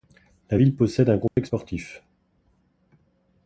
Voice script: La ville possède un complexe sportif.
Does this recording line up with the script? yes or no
yes